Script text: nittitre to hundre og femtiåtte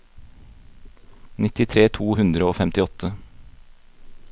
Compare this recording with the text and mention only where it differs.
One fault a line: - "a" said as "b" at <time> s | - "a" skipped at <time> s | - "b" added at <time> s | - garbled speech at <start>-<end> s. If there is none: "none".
none